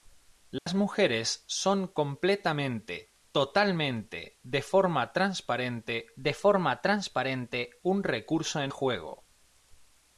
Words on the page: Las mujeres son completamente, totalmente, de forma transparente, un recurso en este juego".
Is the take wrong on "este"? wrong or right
wrong